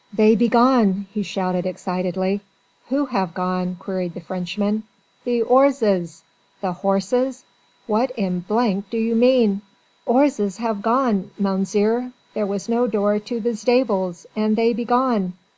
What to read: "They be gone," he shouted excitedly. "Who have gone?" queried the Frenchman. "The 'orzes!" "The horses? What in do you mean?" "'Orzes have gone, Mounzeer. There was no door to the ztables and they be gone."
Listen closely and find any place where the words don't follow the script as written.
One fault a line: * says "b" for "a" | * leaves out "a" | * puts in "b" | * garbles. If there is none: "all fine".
all fine